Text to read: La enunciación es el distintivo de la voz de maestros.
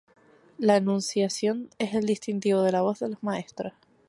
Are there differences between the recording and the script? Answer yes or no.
yes